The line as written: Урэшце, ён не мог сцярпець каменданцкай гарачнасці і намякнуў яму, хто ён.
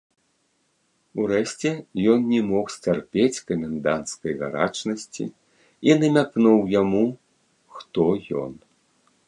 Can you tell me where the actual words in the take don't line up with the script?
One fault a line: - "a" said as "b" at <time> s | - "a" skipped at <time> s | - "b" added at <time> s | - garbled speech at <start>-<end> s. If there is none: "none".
none